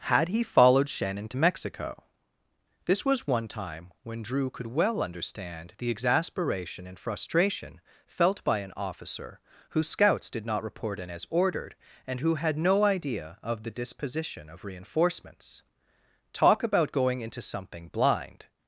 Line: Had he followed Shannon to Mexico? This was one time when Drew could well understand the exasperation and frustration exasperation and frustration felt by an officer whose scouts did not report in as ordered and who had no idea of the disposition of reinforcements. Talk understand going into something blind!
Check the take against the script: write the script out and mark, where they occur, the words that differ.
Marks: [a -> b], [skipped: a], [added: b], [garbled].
Had he followed Shannon to Mexico? This was one time when Drew could well understand the exasperation and frustration [skipped: exasperation and frustration] felt by an officer whose scouts did not report in as ordered and who had no idea of the disposition of reinforcements. Talk [understand -> about] going into something blind!